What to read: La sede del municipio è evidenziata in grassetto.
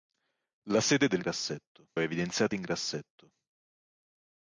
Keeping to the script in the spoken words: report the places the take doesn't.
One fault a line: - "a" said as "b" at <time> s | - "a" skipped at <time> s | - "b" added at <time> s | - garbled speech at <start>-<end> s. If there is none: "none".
- "municipio" said as "grassetto" at 1.2 s